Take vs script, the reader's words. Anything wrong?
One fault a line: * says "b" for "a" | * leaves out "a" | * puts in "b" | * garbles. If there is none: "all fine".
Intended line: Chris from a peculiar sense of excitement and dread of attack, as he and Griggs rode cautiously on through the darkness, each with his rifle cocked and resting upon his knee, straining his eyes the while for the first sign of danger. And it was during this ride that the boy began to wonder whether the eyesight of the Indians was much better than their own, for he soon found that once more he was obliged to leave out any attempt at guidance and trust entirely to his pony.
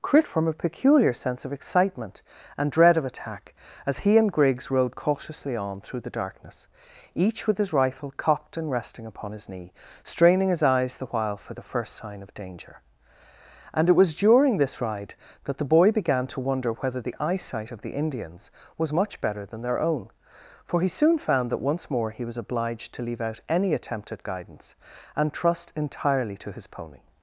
all fine